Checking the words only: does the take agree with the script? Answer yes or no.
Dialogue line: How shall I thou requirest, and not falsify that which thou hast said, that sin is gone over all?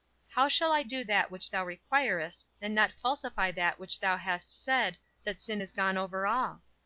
no